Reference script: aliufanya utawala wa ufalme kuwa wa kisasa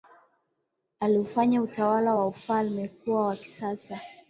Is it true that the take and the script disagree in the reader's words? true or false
false